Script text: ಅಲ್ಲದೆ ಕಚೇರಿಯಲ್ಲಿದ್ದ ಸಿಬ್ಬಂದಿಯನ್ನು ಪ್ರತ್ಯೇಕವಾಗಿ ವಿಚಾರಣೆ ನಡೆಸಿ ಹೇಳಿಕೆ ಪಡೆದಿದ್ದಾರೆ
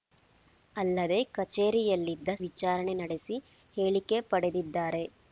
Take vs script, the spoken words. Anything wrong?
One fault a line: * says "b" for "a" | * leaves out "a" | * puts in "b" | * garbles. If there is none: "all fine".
* leaves out "ಸಿಬ್ಬಂದಿಯನ್ನು ಪ್ರತ್ಯೇಕವಾಗಿ"